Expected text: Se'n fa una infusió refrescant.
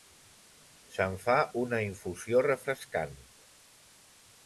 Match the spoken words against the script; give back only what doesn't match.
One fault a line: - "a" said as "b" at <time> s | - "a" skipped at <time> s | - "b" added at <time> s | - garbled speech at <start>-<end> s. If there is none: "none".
none